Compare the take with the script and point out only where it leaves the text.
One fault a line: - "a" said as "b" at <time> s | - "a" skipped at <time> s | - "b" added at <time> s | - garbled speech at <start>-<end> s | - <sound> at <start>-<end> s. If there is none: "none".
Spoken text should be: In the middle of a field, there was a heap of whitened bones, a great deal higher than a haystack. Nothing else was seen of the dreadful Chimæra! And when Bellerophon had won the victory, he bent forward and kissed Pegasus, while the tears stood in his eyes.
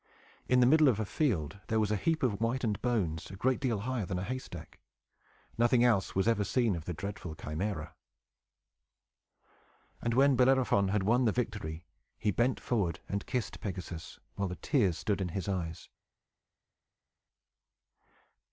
- "ever" added at 6.3 s